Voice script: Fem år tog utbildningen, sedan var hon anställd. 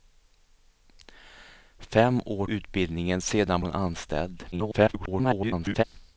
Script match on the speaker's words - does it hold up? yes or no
no